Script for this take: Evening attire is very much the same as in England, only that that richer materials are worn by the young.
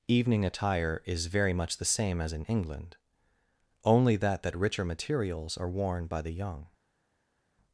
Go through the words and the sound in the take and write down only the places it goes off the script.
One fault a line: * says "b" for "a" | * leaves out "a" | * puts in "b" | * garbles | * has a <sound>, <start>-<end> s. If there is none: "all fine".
all fine